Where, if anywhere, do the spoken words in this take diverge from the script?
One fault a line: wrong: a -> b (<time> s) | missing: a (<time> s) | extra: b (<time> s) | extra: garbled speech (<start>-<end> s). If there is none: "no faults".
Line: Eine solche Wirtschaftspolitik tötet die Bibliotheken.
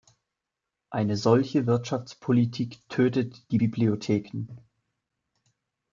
no faults